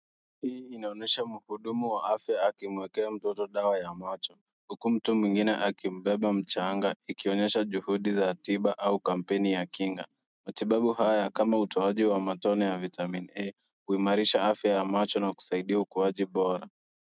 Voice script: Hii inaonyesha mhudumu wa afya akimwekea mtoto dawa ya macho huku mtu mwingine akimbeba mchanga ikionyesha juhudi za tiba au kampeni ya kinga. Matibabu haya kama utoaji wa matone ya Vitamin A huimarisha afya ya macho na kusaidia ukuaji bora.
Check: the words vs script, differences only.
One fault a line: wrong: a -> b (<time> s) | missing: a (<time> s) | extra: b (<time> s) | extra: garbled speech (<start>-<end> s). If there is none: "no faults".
no faults